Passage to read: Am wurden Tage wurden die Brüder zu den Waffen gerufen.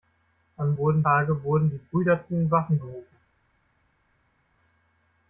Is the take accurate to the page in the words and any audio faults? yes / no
yes